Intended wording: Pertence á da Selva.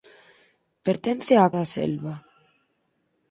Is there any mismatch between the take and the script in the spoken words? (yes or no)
no